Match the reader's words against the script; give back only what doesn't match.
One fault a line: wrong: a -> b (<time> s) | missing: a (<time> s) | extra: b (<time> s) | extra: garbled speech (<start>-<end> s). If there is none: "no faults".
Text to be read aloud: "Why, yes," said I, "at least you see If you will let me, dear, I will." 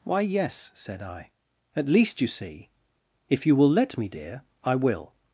no faults